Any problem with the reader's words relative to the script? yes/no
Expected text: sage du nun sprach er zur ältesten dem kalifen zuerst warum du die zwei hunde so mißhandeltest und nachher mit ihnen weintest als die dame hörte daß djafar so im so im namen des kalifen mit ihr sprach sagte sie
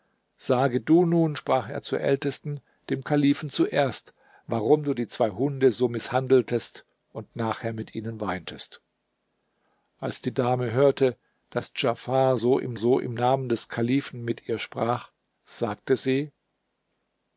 no